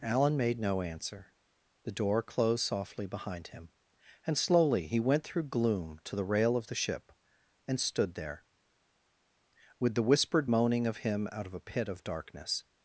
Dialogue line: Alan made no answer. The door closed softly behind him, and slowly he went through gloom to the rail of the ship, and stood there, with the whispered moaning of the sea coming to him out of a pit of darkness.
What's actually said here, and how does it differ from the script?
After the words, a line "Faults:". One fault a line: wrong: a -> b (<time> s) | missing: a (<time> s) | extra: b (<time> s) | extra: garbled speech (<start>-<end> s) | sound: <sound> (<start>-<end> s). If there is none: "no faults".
Alan made no answer. The door closed softly behind him, and slowly he went through gloom to the rail of the ship, and stood there, with the whispered moaning of him out of a pit of darkness.
Faults:
missing: the sea coming to (11.0 s)